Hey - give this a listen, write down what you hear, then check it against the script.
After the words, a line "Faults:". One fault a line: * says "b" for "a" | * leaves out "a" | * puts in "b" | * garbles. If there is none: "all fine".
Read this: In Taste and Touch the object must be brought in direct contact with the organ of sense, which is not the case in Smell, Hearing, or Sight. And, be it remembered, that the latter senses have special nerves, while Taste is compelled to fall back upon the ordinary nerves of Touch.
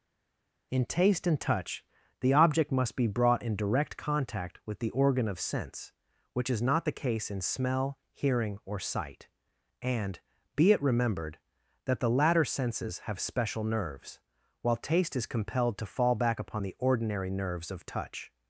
In Taste and Touch the object must be brought in direct contact with the organ of sense, which is not the case in Smell, Hearing, or Sight. And, be it remembered, that the latter senses have special nerves, while Taste is compelled to fall back upon the ordinary nerves of Touch.
Faults:
all fine